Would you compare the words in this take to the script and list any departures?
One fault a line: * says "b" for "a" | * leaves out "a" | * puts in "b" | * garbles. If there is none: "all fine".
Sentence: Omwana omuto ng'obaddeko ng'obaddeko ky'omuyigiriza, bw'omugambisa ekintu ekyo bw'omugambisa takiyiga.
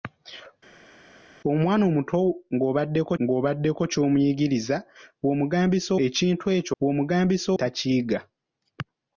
all fine